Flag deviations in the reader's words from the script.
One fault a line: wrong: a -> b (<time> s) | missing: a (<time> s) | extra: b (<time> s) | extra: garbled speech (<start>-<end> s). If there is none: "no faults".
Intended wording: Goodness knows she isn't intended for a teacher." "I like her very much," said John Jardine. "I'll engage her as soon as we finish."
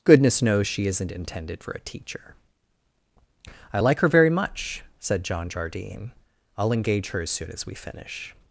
no faults